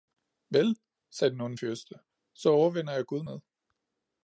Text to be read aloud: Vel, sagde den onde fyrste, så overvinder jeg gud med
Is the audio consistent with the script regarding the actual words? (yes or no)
yes